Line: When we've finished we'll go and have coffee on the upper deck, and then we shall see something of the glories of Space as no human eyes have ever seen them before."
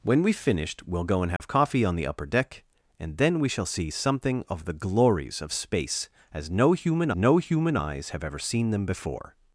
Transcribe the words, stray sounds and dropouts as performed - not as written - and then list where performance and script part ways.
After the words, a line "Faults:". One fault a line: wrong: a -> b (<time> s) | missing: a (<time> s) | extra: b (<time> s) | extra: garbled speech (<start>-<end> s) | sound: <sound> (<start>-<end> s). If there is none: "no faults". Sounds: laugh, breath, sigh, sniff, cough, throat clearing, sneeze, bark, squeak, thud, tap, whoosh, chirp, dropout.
When we've finished we'll go and have coffee on the upper deck, and then we shall see something of the glories of Space as no human no human eyes have ever seen them before."
Faults:
sound: dropout (1.4-1.4 s)
extra: no human (7.1 s)